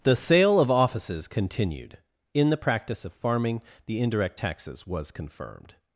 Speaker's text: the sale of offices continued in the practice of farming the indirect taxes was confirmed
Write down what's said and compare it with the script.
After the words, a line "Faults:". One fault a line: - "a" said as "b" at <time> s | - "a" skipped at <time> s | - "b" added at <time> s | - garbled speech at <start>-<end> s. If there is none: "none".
the sale of offices continued in the practice of farming the indirect taxes was confirmed
Faults:
none